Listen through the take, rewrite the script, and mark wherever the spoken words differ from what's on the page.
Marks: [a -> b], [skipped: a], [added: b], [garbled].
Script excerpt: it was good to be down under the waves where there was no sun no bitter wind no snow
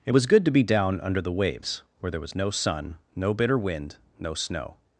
it was good to be down under the waves where there was no sun no bitter wind no snow